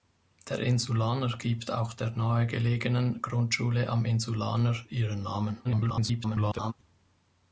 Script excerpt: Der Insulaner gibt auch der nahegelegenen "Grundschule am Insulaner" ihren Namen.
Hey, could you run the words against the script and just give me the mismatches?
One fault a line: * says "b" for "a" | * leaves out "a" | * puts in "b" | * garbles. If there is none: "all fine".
* garbles